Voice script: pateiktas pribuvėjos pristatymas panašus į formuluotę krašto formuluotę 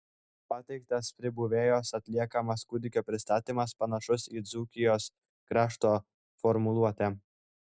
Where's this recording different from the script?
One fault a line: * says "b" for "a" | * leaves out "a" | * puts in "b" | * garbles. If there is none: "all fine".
* puts in "atliekamas kūdikio"
* says "dzūkijos" for "formuluotę"